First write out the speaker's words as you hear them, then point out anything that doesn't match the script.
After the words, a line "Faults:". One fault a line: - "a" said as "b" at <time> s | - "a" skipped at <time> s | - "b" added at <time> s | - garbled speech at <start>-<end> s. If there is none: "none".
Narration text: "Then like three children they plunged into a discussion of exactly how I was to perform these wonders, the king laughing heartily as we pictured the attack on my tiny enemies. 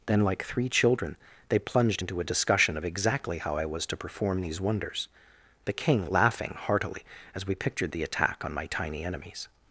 "Then like three children they plunged into a discussion of exactly how I was to perform these wonders, the king laughing heartily as we pictured the attack on my tiny enemies.
Faults:
none